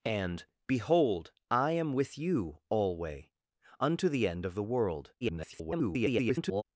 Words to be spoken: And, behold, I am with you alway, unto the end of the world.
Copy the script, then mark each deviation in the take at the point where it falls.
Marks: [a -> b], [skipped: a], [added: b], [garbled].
And, behold, I am with you alway, unto the end of the world. [garbled]